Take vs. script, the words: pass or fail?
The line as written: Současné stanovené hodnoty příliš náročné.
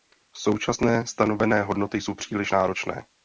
fail